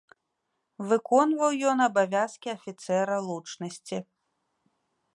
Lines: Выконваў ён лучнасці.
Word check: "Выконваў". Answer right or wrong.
right